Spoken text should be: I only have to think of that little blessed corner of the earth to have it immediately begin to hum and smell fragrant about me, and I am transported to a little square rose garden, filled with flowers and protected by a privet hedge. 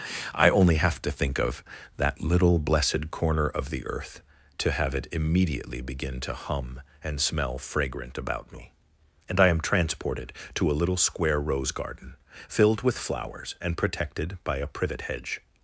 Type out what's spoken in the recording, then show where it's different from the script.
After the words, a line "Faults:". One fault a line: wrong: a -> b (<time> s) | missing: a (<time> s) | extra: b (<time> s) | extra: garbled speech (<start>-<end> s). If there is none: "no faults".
I only have to think of that little blessed corner of the earth to have it immediately begin to hum and smell fragrant about me, and I am transported to a little square rose garden, filled with flowers and protected by a privet hedge.
Faults:
no faults